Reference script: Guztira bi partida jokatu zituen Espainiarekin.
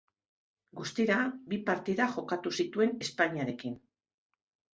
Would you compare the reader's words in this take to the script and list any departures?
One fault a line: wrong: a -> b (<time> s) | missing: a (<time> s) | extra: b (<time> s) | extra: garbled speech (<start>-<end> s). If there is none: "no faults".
no faults